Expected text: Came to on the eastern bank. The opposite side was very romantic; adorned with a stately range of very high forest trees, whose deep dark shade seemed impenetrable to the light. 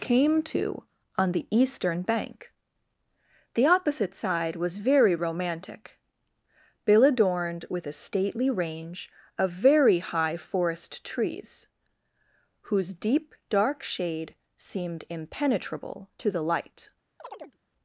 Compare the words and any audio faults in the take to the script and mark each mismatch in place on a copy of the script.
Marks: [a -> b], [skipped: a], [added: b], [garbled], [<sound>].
Came to on the eastern bank. The opposite side was very romantic; [added: bill] adorned with a stately range of very high forest trees, whose deep dark shade seemed impenetrable to the light. [chirp]